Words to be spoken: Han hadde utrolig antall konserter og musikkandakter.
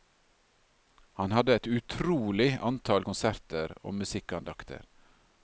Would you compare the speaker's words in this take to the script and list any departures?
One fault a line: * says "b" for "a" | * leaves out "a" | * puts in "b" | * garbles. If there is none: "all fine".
* puts in "et"